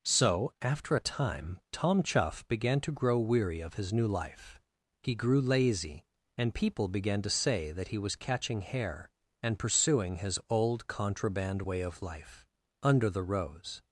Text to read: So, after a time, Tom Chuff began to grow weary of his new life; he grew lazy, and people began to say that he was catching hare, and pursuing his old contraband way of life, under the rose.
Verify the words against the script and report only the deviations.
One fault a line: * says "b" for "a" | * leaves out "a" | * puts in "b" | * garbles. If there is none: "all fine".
all fine